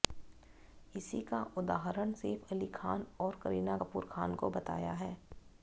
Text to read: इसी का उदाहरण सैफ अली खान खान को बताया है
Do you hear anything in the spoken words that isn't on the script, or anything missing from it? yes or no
yes